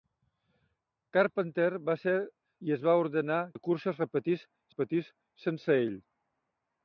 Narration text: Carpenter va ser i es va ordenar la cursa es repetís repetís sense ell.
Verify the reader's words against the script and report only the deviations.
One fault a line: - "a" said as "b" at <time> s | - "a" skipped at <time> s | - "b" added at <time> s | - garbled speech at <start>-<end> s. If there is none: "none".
none